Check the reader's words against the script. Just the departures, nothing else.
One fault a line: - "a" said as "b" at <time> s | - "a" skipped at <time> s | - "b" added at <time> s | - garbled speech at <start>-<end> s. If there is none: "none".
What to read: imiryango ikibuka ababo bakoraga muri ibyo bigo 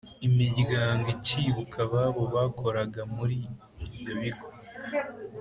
none